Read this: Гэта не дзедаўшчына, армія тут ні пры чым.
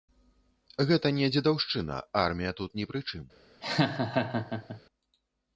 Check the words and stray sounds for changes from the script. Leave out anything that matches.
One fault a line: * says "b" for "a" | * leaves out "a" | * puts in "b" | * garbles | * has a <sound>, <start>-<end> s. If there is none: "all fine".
* has a laugh, 3.6-4.8 s